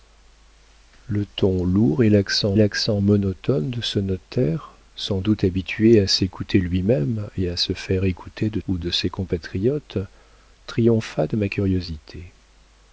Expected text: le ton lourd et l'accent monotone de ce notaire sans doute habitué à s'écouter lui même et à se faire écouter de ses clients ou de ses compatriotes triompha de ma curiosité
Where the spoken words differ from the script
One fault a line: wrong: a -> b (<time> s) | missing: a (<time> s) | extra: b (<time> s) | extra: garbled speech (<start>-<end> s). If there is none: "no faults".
extra: l'accent (2.5 s)
missing: ses clients (8.6 s)